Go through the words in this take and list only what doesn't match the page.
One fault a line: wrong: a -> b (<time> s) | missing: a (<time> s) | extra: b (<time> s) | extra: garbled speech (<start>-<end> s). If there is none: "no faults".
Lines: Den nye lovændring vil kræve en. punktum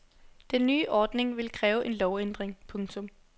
wrong: lovændring -> ordning (0.9 s)
extra: lovændring (1.9 s)